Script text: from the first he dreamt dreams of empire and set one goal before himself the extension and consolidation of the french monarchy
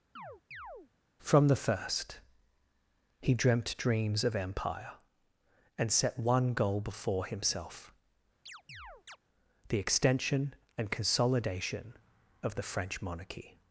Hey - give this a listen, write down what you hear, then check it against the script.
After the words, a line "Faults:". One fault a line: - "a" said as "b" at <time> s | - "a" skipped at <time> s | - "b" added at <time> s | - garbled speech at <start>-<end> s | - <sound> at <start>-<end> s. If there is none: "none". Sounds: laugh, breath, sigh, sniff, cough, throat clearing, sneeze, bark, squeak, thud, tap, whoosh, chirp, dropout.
from the first he dreamt dreams of empire and set one goal before himself the extension and consolidation of the french monarchy
Faults:
- chirp at 0.2-0.9 s
- chirp at 8.5-9.2 s